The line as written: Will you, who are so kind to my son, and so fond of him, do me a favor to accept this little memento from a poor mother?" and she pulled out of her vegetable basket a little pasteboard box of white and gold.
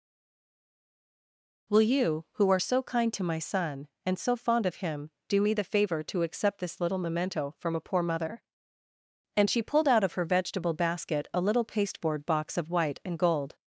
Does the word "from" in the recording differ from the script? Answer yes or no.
no